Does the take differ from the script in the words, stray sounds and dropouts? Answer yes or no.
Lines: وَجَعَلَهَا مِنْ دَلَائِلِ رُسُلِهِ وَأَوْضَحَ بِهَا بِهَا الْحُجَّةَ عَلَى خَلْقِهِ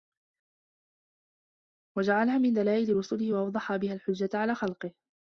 yes